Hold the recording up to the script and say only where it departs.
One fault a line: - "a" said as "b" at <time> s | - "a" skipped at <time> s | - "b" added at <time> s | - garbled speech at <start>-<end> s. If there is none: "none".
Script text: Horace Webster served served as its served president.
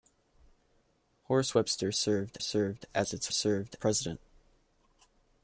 none